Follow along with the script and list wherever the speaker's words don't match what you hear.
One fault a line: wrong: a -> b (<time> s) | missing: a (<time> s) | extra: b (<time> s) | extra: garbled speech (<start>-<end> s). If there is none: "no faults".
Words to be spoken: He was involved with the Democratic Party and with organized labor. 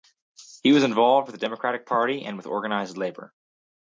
no faults